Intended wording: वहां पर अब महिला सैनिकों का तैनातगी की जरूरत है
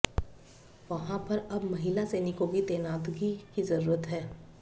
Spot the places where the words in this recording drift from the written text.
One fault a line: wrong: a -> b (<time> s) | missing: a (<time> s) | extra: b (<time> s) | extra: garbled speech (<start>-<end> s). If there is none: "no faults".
wrong: का -> की (2.5 s)